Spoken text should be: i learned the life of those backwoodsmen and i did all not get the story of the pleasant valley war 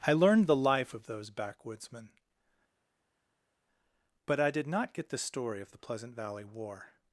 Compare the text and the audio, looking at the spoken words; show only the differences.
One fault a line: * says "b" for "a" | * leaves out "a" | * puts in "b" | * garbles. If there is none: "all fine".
* says "but" for "and"
* leaves out "all"